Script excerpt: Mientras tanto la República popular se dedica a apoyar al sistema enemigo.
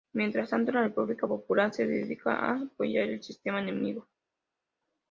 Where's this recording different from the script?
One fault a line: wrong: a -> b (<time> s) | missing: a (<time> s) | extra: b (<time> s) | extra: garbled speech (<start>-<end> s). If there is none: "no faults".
no faults